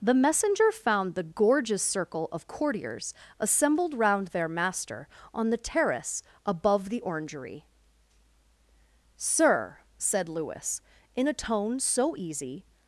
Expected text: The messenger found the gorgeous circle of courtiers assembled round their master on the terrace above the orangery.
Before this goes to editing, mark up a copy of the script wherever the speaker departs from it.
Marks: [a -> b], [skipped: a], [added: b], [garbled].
The messenger found the gorgeous circle of courtiers assembled round their master on the terrace above the orangery. [added: Sir said Lewis in a tone so easy]